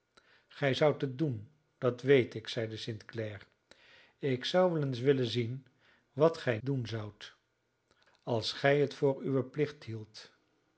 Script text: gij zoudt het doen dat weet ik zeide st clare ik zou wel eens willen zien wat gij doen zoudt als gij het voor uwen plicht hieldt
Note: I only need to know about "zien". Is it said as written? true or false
true